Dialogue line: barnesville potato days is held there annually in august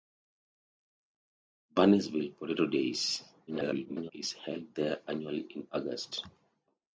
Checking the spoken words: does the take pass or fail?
fail